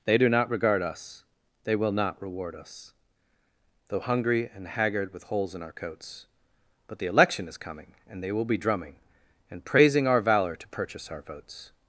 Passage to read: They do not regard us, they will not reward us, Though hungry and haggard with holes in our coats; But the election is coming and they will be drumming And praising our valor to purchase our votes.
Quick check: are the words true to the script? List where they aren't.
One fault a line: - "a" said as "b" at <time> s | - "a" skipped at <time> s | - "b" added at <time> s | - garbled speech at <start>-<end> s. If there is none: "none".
none